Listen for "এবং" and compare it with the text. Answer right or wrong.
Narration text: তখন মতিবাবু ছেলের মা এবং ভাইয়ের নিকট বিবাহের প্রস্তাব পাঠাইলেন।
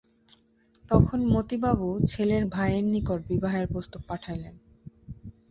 wrong